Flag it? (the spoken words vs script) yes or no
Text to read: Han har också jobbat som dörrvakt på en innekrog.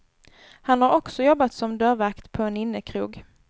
no